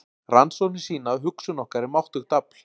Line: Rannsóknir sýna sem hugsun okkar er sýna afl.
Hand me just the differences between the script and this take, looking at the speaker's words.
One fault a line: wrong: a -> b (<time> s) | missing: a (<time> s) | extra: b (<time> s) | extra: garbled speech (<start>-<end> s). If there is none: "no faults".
wrong: sem -> að (1.1 s)
wrong: sýna -> máttugt (2.0 s)